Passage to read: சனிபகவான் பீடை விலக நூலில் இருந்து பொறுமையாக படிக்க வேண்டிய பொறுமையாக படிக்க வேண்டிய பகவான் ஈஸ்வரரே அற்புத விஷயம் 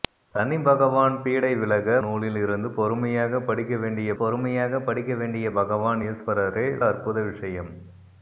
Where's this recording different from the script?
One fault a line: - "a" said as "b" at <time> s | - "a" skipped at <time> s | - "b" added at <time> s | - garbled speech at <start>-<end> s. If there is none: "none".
none